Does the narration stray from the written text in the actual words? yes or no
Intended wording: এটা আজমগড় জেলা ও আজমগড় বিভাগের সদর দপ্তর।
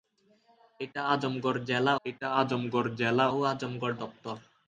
yes